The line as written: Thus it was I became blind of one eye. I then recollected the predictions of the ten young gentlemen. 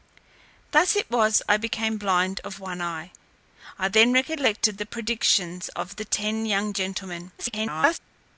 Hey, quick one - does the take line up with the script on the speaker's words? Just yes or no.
no